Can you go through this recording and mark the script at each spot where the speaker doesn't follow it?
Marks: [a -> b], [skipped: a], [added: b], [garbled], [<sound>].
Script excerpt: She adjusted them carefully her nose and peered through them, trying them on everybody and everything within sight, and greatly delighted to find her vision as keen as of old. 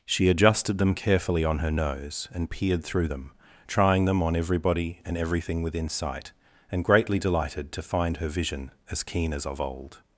She adjusted them carefully [added: on] her nose and peered through them, trying them on everybody and everything within sight, and greatly delighted to find her vision as keen as of old.